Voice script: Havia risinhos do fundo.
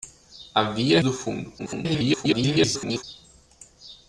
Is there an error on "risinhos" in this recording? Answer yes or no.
yes